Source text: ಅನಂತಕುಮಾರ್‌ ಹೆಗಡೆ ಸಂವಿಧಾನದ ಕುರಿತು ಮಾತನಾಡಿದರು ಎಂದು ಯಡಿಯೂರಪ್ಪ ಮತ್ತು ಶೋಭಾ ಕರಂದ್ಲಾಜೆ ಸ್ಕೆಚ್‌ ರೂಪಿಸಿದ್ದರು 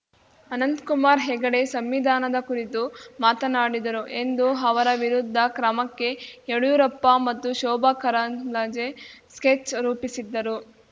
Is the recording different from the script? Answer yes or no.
yes